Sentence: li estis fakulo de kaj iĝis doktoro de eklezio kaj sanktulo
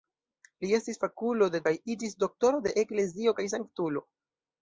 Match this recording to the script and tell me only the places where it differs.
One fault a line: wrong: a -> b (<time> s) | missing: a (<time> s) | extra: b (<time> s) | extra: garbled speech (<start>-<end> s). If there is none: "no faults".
no faults